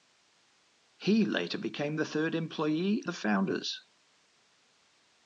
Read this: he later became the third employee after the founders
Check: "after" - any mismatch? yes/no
yes